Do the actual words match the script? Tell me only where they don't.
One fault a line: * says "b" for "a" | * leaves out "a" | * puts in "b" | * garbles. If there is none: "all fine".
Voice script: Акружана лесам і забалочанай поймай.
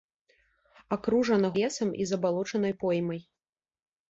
all fine